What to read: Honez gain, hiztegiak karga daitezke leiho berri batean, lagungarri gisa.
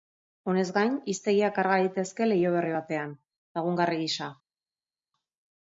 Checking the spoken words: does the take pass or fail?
pass